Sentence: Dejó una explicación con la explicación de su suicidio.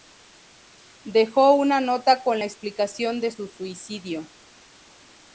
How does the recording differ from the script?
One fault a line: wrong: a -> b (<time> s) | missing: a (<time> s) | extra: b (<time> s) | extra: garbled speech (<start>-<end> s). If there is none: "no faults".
wrong: explicación -> nota (1.8 s)